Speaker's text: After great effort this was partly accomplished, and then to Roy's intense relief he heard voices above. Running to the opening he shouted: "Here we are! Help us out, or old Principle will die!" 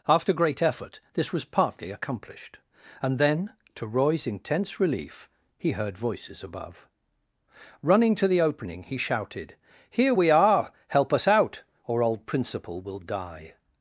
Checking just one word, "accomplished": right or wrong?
right